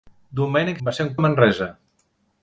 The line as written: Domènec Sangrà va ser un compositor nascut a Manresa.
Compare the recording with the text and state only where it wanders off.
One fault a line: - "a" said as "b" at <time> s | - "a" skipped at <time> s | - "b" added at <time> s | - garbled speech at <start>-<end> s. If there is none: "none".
- "Sangrà" skipped at 0.8 s
- "compositor nascut" skipped at 1.1 s